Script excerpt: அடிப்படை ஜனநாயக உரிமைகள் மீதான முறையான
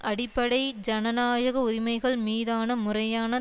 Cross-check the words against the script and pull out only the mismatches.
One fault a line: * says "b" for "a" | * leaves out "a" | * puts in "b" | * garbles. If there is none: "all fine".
all fine